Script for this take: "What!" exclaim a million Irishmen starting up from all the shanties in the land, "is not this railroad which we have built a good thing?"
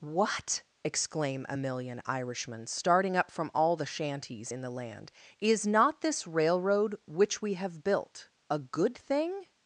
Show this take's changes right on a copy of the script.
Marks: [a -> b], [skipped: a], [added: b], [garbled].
"What!" exclaim a million Irishmen starting up from all the shanties in the land, "is not this railroad which we have built a good thing?"